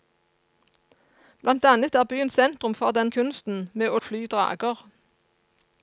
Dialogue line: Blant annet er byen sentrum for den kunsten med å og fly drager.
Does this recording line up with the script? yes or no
yes